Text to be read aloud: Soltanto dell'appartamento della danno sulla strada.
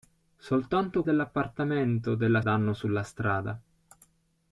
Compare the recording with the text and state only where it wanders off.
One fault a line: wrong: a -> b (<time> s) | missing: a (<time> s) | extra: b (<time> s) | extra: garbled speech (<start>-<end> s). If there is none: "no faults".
no faults